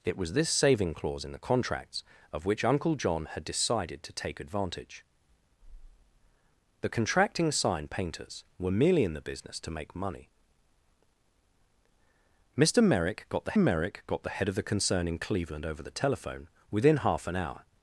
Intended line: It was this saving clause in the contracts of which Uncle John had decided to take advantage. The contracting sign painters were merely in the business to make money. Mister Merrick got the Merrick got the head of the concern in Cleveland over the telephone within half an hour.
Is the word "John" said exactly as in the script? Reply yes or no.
yes